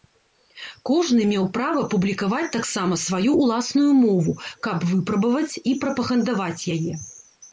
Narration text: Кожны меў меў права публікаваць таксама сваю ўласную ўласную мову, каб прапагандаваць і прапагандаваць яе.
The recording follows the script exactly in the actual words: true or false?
false